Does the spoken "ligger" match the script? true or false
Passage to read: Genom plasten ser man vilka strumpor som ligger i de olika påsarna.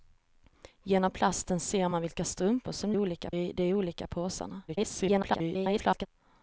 false